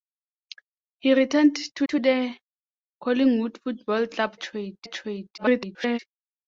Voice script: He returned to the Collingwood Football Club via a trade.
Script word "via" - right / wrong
wrong